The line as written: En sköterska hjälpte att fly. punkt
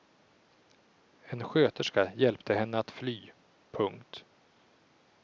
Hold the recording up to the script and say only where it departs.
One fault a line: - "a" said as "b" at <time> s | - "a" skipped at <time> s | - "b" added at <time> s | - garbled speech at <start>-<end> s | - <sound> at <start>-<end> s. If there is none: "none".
- "henne" added at 2.5 s